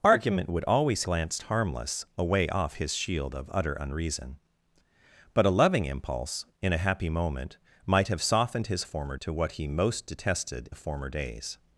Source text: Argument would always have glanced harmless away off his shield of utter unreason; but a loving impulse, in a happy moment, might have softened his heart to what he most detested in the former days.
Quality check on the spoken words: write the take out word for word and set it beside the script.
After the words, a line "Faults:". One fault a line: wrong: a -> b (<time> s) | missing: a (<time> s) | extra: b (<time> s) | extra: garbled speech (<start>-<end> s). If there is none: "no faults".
Argument would always glanced harmless away off his shield of utter unreason; but a loving impulse, in a happy moment, might have softened his former to what he most detested the former days.
Faults:
missing: have (1.0 s)
wrong: heart -> former (8.8 s)
missing: in (10.7 s)